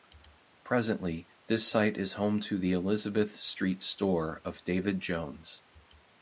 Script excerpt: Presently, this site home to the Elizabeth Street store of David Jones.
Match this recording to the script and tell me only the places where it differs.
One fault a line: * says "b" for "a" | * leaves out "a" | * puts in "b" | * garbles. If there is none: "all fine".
* puts in "is"